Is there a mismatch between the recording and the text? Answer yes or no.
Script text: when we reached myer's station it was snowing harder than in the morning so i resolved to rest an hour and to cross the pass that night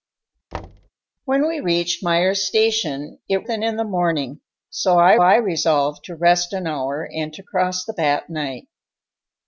yes